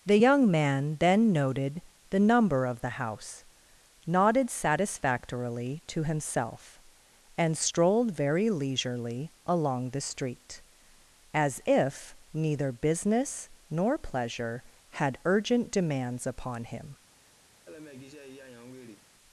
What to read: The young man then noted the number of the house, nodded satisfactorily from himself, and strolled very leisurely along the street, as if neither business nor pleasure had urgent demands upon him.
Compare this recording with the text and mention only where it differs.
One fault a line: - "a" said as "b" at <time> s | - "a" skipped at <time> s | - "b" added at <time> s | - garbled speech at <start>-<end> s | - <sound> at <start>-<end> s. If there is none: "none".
- "from" said as "to" at 5.9 s
- laugh at 17.7-19.1 s